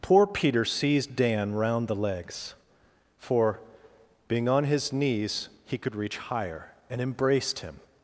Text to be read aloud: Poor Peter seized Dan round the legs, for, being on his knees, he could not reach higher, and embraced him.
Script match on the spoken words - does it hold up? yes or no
no